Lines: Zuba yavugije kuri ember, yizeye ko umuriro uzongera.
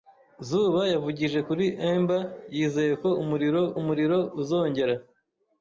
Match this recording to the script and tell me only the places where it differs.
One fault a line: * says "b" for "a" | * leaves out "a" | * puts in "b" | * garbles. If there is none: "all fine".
* puts in "umuriro"